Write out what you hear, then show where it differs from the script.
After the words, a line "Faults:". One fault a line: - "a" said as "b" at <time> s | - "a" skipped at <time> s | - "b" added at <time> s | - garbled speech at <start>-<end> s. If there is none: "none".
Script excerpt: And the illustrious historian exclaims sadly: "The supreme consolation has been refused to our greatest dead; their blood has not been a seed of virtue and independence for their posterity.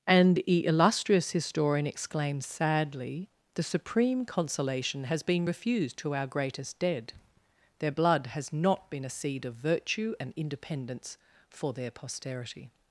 And the illustrious historian exclaims sadly: "The supreme consolation has been refused to our greatest dead; their blood has not been a seed of virtue and independence for their posterity.
Faults:
none